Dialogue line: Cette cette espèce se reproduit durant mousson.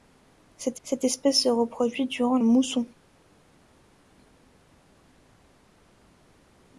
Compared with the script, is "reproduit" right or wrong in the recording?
right